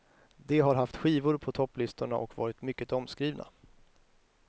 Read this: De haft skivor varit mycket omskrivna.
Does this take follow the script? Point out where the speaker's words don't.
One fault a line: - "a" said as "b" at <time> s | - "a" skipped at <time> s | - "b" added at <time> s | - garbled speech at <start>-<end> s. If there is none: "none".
- "har" added at 0.6 s
- "på topplistorna och" added at 1.4 s